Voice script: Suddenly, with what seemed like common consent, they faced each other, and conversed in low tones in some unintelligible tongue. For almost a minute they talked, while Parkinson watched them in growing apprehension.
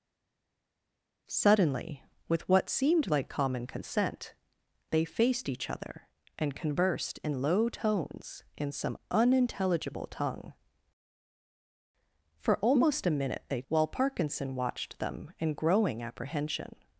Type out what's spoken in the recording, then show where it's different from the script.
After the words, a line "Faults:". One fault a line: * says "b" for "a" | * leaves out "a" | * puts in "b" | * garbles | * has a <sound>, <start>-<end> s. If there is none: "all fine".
Suddenly, with what seemed like common consent, they faced each other, and conversed in low tones in some unintelligible tongue. For almost a minute they while Parkinson watched them in growing apprehension.
Faults:
* leaves out "talked"